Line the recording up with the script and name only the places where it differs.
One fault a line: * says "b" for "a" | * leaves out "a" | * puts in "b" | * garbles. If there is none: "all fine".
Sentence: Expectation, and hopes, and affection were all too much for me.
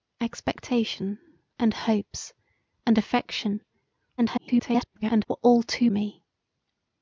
* garbles
* leaves out "much for"